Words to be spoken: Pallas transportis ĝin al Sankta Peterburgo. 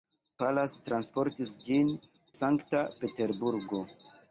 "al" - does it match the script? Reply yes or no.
no